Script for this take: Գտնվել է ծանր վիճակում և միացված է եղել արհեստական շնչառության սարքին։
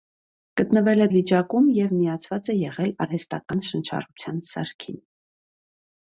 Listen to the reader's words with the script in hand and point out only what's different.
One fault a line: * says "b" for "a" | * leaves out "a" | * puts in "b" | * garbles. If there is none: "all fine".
* leaves out "ծանր"